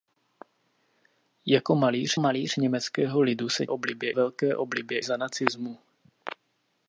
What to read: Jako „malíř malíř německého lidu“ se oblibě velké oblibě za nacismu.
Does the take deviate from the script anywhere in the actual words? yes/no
no